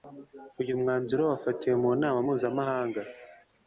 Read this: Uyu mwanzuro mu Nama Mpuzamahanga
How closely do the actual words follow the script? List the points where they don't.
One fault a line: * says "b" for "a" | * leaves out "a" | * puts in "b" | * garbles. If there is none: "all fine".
* puts in "wafatiwe"